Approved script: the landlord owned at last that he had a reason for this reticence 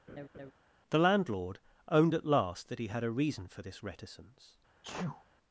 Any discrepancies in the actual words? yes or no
no